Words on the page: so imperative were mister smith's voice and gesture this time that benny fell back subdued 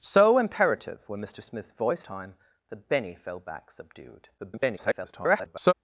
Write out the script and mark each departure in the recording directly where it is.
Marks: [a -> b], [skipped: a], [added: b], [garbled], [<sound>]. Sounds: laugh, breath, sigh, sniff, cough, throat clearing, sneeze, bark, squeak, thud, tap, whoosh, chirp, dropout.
so imperative were mister smith's voice [skipped: and gesture this] time that benny fell back subdued [garbled]